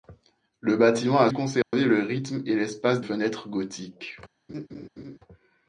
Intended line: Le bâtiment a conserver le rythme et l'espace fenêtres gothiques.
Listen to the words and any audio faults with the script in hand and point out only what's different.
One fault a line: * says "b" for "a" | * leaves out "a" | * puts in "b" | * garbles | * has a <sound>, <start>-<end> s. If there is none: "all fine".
* has a dropout, 1.6-1.7 s
* has a laugh, 4.5-5.2 s